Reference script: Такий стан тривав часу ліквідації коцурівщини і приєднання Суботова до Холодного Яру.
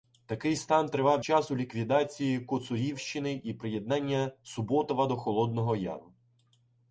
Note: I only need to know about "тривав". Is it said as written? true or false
true